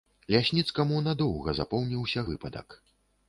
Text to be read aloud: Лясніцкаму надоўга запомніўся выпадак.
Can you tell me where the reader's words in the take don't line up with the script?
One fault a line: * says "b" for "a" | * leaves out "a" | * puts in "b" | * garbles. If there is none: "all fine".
all fine